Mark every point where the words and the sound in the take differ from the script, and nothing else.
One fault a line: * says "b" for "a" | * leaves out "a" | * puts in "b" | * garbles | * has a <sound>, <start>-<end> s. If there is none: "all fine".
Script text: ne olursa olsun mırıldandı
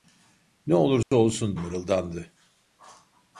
* has a dropout, 1.0-1.1 s